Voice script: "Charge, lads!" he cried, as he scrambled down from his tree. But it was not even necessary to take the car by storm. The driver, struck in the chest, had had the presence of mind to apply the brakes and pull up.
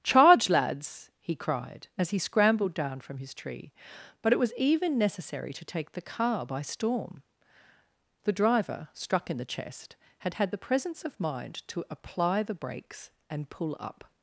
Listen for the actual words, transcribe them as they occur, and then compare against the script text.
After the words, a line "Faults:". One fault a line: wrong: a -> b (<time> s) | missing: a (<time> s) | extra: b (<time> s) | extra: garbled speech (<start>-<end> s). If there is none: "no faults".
"Charge, lads!" he cried, as he scrambled down from his tree. But it was even necessary to take the car by storm. The driver, struck in the chest, had had the presence of mind to apply the brakes and pull up.
Faults:
missing: not (4.5 s)